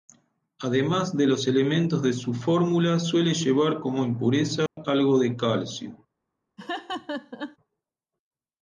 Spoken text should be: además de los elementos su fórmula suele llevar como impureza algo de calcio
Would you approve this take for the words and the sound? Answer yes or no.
no